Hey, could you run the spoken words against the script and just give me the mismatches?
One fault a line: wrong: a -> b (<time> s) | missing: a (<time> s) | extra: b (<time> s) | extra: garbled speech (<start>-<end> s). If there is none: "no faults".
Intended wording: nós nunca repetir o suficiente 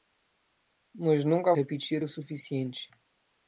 no faults